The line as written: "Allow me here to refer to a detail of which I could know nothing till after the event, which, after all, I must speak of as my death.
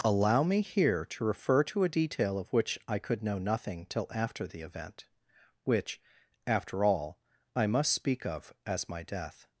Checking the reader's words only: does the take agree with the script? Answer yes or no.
yes